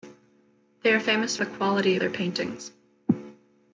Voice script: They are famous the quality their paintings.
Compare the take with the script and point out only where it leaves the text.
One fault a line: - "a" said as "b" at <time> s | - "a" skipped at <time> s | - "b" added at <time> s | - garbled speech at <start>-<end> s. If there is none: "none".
none